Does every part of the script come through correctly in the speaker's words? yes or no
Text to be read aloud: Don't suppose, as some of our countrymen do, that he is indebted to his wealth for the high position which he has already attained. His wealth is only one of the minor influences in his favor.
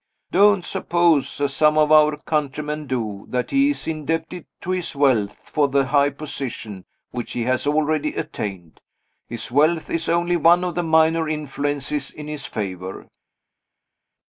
yes